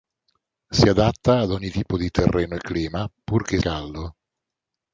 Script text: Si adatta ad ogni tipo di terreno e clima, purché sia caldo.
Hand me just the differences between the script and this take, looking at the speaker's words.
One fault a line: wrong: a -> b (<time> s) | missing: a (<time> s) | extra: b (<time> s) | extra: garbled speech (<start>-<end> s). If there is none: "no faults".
missing: sia (3.6 s)